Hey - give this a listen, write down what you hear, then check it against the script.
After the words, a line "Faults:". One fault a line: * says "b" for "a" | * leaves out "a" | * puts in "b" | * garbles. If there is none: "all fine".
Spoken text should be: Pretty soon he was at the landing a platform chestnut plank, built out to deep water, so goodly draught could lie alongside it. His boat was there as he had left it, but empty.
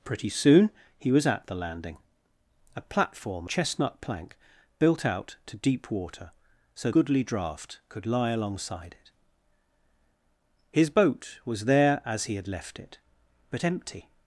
Pretty soon he was at the landing a platform chestnut plank, built out to deep water, so goodly draught could lie alongside it. His boat was there as he had left it, but empty.
Faults:
all fine